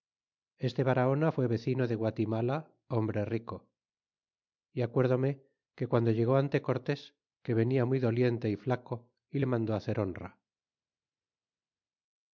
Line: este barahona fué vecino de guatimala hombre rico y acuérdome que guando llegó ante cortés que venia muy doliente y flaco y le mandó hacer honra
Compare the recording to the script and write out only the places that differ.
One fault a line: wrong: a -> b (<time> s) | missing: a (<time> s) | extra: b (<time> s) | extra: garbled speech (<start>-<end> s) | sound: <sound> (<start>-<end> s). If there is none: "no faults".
no faults